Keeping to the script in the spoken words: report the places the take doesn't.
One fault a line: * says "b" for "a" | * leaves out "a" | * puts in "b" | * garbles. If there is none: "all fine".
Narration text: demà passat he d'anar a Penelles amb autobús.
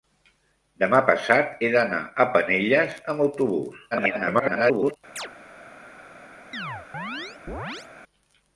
* garbles